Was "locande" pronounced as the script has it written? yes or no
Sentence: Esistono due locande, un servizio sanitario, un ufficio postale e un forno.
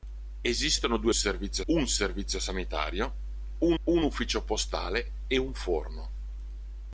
no